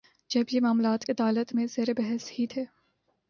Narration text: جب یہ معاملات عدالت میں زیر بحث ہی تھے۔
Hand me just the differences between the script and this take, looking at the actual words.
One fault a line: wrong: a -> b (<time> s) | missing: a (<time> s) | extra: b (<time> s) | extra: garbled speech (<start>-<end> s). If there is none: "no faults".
no faults